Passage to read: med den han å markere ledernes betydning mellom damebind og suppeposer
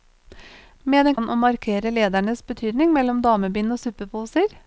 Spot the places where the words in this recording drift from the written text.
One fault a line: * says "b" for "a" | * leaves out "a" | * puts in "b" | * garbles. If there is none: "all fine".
all fine